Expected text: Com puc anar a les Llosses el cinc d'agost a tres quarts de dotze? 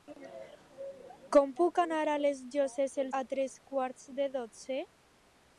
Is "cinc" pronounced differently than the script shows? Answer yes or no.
yes